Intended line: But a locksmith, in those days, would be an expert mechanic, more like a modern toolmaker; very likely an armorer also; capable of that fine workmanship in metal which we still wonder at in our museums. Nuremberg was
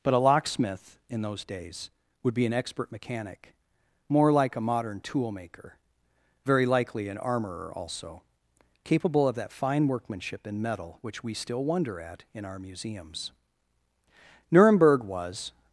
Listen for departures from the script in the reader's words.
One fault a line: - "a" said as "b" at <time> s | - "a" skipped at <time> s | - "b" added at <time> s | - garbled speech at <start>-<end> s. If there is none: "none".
none